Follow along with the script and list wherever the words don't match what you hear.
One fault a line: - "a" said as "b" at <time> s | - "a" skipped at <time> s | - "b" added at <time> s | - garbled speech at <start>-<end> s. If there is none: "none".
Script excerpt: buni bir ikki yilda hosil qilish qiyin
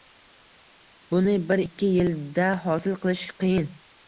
none